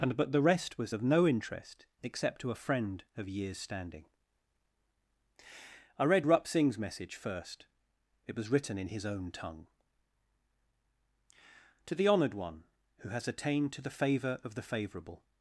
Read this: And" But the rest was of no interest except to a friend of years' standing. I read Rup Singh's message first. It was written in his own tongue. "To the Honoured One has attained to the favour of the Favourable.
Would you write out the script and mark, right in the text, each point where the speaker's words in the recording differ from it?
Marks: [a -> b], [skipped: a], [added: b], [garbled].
And" But the rest was of no interest except to a friend of years' standing. I read Rup Singh's message first. It was written in his own tongue. "To the Honoured One [added: who] has attained to the favour of the Favourable.